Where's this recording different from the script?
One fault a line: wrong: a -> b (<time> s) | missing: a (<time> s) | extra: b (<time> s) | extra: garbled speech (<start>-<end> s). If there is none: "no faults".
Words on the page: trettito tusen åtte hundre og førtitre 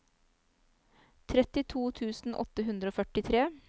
no faults